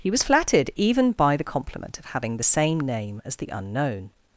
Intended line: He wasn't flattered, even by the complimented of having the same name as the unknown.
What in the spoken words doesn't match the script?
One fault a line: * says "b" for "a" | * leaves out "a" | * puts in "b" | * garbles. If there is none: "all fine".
* says "was" for "wasn't"
* says "compliment" for "complimented"